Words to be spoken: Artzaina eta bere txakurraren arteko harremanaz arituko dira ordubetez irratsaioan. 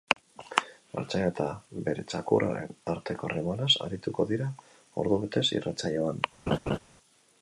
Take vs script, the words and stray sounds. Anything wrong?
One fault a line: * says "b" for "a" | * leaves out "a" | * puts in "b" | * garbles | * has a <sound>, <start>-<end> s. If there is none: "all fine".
* has a laugh, 6.5-6.8 s